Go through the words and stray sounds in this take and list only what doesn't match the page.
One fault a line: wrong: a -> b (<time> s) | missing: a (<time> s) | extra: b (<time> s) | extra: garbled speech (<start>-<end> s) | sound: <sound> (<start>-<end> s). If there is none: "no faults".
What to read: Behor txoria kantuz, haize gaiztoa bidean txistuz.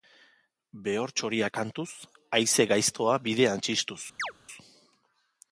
sound: chirp (4.2-4.3 s)